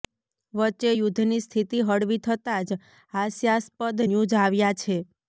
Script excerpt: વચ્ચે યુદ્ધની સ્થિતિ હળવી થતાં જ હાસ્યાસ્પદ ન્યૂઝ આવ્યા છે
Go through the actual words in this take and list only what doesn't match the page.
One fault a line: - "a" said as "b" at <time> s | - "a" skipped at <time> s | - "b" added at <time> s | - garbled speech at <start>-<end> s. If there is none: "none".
none